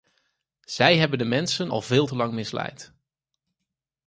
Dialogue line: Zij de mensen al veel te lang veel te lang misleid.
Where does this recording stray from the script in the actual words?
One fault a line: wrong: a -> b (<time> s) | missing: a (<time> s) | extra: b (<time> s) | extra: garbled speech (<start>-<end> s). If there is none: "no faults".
extra: hebben (1.0 s)
missing: veel te lang (2.3 s)